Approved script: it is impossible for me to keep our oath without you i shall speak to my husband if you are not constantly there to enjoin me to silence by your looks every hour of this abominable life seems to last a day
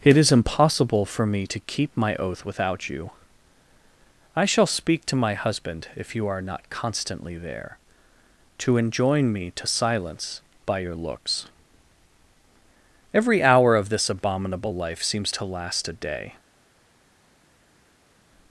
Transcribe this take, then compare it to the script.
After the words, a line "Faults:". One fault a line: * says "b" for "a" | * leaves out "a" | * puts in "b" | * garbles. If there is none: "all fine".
it is impossible for me to keep my oath without you i shall speak to my husband if you are not constantly there to enjoin me to silence by your looks every hour of this abominable life seems to last a day
Faults:
* says "my" for "our"